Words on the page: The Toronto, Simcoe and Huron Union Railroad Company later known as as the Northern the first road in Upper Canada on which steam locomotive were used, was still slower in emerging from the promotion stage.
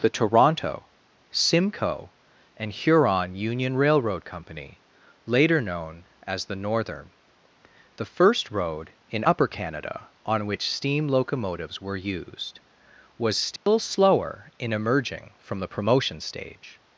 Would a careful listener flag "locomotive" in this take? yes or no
yes